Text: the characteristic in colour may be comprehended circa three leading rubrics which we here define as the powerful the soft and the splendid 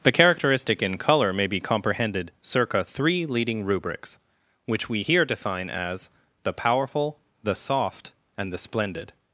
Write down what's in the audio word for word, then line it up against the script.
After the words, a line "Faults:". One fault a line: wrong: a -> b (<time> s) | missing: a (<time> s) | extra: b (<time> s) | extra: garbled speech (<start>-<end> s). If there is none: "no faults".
the characteristic in colour may be comprehended circa three leading rubrics which we here define as the powerful the soft and the splendid
Faults:
no faults